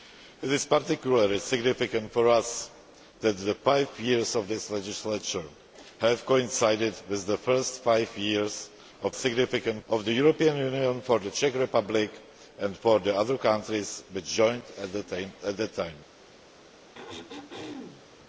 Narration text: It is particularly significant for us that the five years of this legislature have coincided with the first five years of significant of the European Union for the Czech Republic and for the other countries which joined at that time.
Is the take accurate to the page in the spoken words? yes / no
yes